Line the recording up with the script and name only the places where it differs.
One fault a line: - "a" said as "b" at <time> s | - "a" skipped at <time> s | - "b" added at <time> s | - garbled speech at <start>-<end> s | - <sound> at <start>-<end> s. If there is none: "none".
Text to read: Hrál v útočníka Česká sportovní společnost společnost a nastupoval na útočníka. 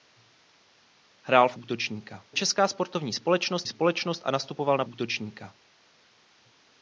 none